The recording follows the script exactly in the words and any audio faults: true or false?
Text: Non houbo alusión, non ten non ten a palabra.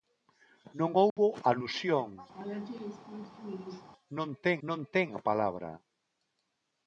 false